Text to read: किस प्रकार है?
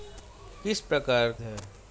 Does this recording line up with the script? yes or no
yes